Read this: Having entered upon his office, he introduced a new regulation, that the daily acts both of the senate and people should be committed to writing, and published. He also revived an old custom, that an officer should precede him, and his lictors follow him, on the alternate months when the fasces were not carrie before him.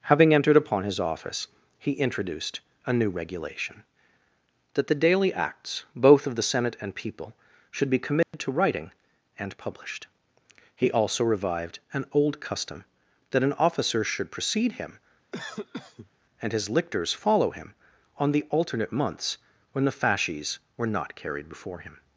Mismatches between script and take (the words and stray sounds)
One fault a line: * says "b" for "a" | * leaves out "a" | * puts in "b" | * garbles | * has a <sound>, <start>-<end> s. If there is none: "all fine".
* has a dropout, 8.2-8.3 s
* has a cough, 15.3-16.1 s
* says "carried" for "carrie"